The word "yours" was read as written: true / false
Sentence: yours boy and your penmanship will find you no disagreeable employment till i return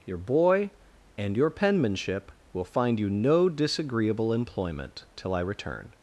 false